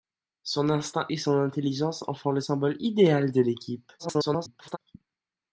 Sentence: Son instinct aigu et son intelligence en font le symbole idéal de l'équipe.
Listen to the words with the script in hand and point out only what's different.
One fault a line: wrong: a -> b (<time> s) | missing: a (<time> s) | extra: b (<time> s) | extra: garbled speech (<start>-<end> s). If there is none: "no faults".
missing: aigu (1.1 s)
extra: garbled speech (4.0-4.8 s)